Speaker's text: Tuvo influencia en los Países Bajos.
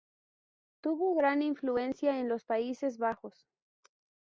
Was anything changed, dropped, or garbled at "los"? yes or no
no